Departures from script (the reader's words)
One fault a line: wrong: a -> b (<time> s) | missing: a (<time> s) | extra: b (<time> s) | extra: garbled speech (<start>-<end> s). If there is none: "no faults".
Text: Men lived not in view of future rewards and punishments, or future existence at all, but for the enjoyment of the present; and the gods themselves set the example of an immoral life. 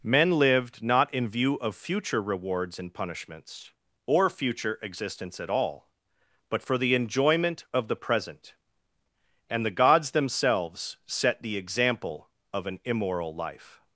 no faults